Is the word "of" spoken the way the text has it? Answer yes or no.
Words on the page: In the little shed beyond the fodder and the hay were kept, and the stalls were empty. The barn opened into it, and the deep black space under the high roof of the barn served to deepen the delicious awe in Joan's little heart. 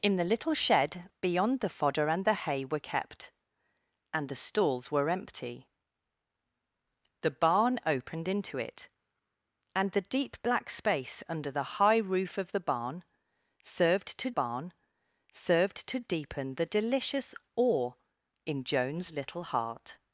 yes